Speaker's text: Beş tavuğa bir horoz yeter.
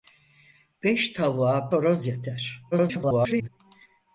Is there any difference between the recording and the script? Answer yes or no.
yes